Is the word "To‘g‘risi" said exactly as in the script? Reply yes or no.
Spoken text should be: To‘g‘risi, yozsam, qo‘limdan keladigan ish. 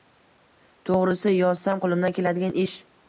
yes